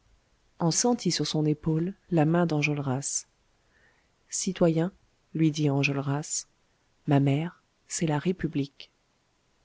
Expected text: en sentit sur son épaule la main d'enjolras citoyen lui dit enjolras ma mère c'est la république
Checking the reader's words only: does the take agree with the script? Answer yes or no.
yes